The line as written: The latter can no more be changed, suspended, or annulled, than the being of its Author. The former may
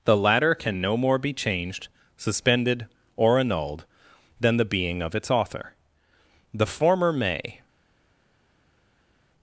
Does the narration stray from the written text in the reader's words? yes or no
no